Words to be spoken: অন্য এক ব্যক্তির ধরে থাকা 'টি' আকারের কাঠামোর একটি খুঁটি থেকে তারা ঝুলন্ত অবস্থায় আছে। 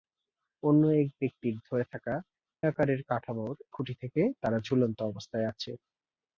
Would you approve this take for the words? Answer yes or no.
no